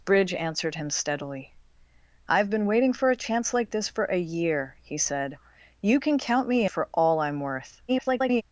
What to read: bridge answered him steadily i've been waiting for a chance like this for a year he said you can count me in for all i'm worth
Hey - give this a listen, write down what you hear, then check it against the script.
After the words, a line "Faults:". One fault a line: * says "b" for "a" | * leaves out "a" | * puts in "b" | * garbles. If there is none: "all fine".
bridge answered him steadily i've been waiting for a chance like this for a year he said you can count me for all i'm worth [garbled]
Faults:
* leaves out "in"
* garbles